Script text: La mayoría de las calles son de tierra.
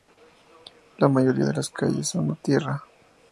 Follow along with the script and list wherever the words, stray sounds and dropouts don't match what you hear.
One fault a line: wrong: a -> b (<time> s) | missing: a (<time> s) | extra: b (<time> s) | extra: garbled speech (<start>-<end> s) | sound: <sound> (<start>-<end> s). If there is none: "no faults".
no faults